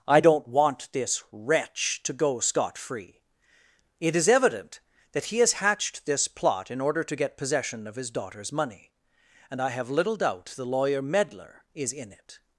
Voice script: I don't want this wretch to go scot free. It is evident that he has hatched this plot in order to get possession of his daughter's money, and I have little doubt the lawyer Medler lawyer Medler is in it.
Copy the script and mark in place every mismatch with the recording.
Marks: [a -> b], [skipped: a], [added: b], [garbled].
I don't want this wretch to go scot free. It is evident that he has hatched this plot in order to get possession of his daughter's money, and I have little doubt the lawyer Medler [skipped: lawyer Medler] is in it.